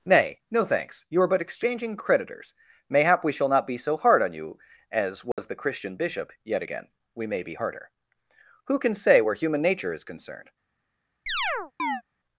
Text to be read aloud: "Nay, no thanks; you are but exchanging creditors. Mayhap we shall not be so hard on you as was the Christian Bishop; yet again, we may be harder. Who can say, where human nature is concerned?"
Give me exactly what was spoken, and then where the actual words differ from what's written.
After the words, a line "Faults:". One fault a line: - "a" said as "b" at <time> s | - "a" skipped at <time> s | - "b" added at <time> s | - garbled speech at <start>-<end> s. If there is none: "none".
"Nay, no thanks; you are but exchanging creditors. Mayhap we shall not be so hard on you as was the Christian Bishop; yet again, we may be harder. Who can say, where human nature is concerned?"
Faults:
none